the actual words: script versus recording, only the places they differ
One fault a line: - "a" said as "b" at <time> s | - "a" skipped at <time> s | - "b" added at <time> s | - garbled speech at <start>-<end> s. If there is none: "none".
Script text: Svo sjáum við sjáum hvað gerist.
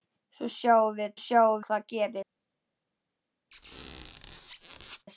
none